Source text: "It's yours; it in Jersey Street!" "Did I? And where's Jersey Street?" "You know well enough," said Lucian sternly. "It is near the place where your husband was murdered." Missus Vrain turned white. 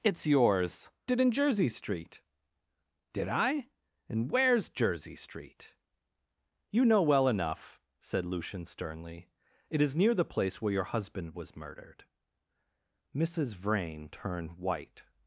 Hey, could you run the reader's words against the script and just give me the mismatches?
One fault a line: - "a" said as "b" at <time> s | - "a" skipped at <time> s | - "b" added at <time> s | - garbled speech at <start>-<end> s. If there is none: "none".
none